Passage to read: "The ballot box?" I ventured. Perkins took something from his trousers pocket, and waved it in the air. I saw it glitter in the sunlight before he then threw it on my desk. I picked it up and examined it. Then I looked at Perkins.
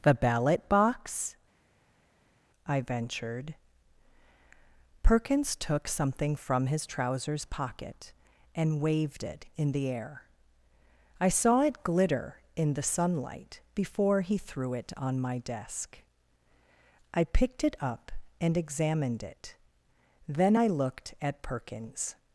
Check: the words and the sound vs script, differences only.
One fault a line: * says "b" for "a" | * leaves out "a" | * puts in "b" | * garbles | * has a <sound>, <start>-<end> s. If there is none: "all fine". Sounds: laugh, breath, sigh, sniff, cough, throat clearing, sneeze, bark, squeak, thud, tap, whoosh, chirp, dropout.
* leaves out "then"